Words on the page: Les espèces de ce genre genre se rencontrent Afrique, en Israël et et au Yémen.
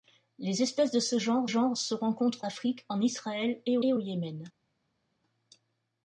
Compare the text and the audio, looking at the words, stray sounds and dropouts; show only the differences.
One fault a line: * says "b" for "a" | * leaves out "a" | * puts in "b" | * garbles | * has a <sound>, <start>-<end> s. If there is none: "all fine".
all fine